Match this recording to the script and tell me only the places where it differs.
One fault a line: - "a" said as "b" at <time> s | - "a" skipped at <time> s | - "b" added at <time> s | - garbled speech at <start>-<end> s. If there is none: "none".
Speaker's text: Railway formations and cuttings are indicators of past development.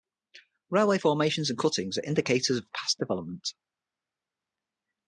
none